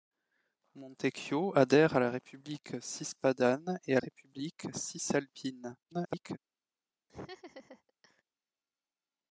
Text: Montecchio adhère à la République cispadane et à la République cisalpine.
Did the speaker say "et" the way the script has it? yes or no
yes